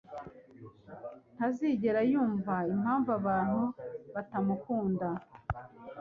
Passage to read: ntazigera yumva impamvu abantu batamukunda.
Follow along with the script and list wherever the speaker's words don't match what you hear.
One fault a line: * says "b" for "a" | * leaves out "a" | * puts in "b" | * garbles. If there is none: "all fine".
all fine